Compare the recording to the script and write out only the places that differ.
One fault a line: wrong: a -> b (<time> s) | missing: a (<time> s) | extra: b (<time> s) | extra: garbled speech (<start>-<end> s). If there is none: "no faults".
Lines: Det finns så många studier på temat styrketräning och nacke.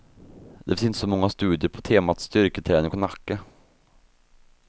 extra: inte (0.8 s)